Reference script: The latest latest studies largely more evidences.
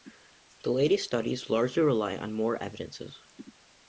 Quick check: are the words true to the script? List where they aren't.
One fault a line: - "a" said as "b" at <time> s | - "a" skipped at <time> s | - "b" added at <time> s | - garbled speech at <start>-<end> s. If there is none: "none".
- "latest" skipped at 1.1 s
- "rely on" added at 1.8 s